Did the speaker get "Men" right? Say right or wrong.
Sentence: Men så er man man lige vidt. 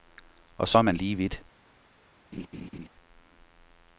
wrong